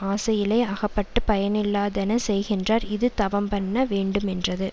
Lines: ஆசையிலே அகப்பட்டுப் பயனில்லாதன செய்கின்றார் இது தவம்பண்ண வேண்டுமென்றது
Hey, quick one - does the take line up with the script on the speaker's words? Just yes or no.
yes